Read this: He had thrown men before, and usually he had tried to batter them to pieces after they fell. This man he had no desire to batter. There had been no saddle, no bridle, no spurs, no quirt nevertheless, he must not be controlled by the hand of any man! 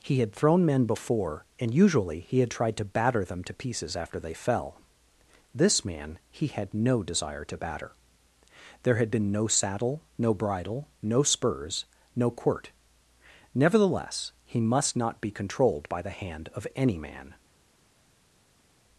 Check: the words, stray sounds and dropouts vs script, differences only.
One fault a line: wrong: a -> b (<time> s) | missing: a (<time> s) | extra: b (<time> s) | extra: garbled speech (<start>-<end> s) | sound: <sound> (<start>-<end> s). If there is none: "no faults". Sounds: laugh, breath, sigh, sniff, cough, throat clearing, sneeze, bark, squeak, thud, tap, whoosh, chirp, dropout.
no faults